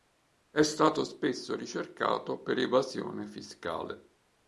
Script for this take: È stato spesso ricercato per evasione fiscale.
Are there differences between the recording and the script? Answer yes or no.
no